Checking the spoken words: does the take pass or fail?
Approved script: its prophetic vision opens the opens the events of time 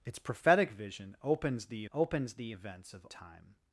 pass